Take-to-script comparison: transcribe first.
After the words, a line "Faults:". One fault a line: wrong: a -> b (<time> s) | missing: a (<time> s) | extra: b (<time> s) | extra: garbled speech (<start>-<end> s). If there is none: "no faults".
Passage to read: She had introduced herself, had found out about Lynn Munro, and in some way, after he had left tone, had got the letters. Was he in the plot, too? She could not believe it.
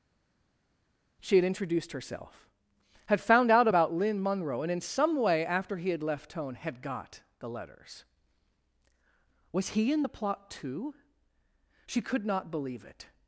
She had introduced herself, had found out about Lynn Munro, and in some way, after he had left tone, had got the letters. Was he in the plot, too? She could not believe it.
Faults:
no faults